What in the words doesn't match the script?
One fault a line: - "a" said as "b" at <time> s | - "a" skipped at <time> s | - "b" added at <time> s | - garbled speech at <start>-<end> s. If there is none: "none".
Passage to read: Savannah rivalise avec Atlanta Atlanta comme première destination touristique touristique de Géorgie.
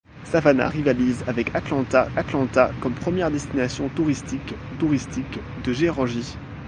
none